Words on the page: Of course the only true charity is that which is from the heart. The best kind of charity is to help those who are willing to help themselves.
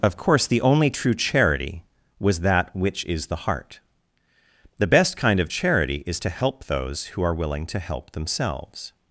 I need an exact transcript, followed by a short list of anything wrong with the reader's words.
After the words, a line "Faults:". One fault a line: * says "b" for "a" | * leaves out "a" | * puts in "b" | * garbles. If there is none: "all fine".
Of course the only true charity was that which is the heart. The best kind of charity is to help those who are willing to help themselves.
Faults:
* says "was" for "is"
* leaves out "from"